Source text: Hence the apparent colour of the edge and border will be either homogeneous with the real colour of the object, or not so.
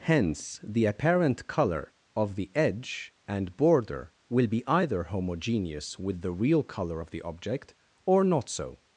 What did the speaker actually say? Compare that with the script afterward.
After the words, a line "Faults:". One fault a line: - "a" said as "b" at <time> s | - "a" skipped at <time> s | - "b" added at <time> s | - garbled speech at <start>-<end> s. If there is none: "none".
Hence the apparent colour of the edge and border will be either homogeneous with the real colour of the object, or not so.
Faults:
none